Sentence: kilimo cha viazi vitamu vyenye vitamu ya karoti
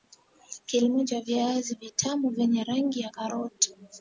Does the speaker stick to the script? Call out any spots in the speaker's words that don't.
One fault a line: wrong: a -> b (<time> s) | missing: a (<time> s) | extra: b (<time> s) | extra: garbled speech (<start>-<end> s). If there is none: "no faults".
wrong: vitamu -> rangi (2.6 s)